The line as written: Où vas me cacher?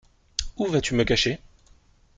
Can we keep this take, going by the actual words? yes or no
no